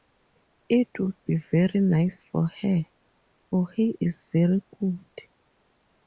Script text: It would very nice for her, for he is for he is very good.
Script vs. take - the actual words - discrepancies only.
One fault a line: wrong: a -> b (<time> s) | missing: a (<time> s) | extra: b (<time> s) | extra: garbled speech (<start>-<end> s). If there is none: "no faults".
extra: be (1.2 s)
missing: for he is (4.2 s)